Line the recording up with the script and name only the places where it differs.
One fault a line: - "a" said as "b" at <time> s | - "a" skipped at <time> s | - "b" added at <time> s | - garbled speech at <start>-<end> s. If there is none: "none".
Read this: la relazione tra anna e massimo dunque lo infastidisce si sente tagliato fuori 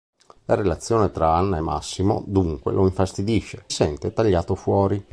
- "si" skipped at 3.6 s